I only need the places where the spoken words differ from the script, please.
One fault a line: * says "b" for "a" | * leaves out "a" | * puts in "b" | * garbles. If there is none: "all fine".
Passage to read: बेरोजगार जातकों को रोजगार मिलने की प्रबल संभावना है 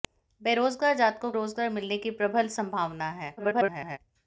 * leaves out "को"
* garbles